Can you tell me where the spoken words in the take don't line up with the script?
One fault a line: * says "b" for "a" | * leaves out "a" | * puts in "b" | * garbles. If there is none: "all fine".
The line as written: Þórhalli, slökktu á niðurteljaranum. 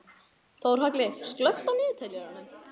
all fine